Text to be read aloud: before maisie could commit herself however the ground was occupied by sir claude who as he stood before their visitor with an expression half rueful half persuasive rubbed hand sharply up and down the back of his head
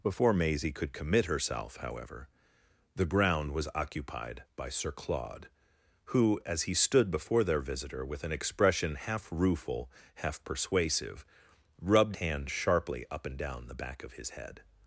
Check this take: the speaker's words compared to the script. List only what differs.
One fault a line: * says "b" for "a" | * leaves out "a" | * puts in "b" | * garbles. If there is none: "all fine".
all fine